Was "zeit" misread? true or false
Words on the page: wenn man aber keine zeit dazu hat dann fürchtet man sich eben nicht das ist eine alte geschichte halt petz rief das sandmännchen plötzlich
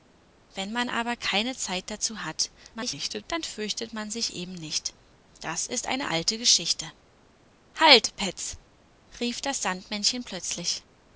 false